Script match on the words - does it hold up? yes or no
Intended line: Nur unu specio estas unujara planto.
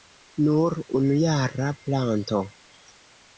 no